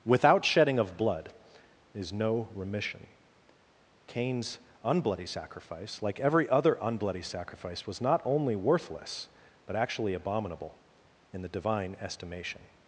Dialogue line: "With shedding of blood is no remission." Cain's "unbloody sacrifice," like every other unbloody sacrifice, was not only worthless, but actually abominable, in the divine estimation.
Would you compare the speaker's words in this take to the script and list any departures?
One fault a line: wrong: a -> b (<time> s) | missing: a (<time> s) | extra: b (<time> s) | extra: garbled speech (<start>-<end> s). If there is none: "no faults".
wrong: With -> Without (0.0 s)